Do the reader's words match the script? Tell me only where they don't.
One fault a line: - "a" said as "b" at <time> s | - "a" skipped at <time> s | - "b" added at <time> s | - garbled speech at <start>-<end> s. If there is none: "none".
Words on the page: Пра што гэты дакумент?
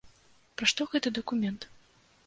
none